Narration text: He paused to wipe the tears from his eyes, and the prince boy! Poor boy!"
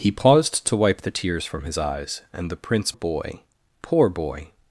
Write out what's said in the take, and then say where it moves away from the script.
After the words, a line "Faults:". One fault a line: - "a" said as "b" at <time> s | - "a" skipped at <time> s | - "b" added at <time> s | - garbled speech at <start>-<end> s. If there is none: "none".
He paused to wipe the tears from his eyes, and the prince boy! Poor boy!"
Faults:
none